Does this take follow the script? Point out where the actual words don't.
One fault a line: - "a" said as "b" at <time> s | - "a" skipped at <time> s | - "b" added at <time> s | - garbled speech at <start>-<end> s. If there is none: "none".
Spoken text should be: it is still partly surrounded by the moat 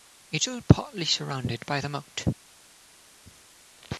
- "is" skipped at 0.4 s